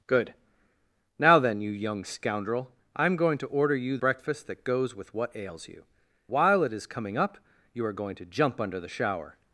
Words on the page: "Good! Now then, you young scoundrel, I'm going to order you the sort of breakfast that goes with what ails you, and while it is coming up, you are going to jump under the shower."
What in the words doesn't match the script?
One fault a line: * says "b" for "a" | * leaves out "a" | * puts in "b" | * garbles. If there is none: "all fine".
* leaves out "the sort of"
* leaves out "and"